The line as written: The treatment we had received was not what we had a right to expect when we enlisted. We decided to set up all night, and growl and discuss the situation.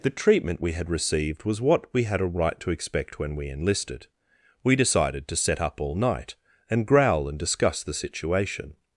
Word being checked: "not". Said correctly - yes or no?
no